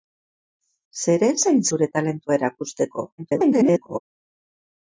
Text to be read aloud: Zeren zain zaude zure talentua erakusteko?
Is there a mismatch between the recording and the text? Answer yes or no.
yes